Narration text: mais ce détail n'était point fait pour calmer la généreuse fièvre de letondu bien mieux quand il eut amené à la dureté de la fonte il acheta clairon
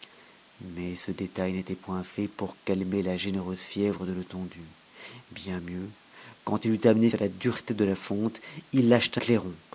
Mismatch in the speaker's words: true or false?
false